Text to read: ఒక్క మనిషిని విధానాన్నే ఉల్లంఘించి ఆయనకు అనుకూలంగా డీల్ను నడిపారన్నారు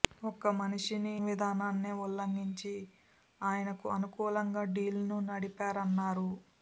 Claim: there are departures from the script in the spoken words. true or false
false